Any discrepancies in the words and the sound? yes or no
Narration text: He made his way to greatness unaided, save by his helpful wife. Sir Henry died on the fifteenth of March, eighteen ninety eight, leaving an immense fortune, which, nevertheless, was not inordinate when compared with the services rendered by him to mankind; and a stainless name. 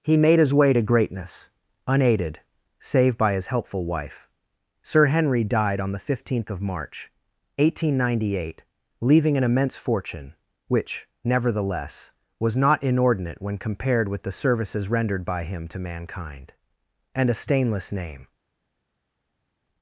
no